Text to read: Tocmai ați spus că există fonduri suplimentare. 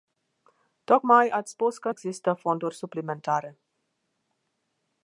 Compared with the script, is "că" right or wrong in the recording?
right